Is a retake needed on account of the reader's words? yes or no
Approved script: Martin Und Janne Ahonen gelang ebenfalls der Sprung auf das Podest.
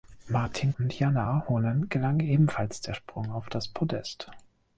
no